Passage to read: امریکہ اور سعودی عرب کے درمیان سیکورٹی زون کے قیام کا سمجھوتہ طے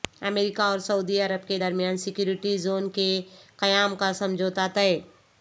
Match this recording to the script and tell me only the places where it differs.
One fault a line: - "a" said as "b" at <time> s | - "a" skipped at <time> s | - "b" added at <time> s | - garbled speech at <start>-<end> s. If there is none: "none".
none